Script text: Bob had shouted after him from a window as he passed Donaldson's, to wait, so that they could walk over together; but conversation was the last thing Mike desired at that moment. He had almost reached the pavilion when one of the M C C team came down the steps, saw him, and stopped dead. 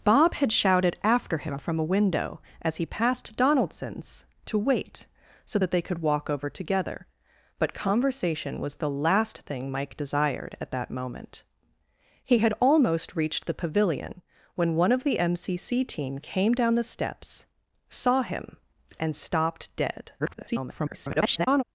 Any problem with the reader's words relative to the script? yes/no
yes